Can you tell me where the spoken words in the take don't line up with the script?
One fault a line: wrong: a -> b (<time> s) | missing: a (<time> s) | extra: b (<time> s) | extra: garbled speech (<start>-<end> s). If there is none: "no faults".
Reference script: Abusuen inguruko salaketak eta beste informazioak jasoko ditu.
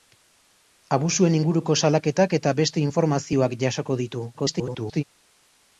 extra: garbled speech (4.3-5.0 s)